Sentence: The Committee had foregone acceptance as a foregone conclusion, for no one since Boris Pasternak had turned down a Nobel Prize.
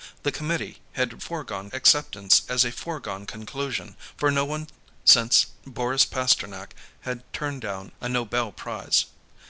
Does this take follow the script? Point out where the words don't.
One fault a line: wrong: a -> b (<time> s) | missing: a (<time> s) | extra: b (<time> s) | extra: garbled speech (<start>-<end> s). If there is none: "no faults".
no faults